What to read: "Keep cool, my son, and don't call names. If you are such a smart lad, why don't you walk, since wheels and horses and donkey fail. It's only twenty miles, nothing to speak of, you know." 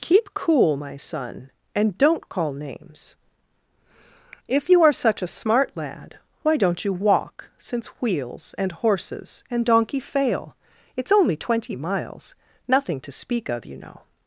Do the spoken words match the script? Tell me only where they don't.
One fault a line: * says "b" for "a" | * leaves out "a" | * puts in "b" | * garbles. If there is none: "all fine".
all fine